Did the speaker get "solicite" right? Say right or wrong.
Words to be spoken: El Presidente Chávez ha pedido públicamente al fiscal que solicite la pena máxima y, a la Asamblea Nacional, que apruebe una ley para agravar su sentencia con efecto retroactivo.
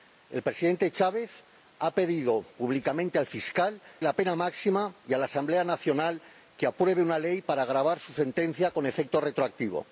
wrong